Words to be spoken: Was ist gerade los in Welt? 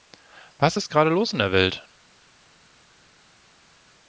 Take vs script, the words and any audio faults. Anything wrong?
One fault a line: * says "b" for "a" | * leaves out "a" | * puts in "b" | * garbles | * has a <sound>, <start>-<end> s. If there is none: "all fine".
* puts in "der"